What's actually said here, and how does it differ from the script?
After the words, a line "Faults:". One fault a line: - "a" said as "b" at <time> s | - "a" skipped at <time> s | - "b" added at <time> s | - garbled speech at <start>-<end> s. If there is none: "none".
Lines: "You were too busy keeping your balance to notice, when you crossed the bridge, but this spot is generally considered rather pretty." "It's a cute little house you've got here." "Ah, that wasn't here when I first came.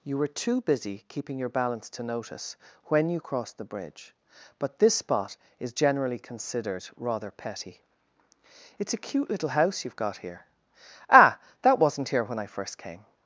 "You were too busy keeping your balance to notice, when you crossed the bridge, but this spot is generally considered rather petty." "It's a cute little house you've got here." "Ah, that wasn't here when I first came.
Faults:
- "pretty" said as "petty" at 7.3 s